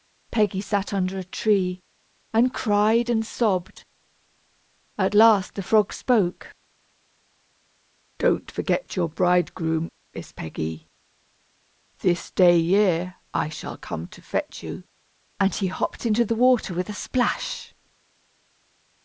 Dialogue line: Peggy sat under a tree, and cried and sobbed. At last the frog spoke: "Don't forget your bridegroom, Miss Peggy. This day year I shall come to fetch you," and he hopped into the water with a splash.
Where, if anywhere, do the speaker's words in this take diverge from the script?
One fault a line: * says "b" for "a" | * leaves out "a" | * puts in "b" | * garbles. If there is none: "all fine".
all fine